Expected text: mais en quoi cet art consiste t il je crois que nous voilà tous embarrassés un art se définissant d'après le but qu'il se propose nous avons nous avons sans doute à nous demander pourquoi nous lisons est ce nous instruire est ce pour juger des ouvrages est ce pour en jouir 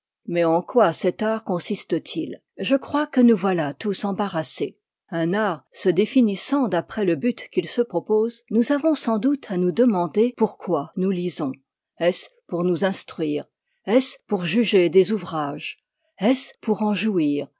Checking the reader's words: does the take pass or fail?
fail